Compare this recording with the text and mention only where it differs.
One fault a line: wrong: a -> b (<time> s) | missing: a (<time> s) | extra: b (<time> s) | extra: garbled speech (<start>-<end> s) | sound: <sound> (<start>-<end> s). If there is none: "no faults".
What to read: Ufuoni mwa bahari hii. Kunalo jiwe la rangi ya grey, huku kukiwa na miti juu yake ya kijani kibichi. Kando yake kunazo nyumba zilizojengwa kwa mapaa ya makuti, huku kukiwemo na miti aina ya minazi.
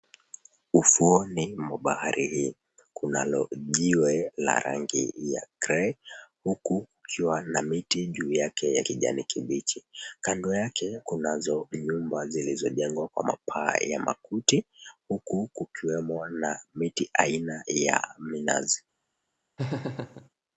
sound: laugh (19.6-20.3 s)